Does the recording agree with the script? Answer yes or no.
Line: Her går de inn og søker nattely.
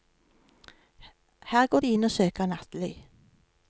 yes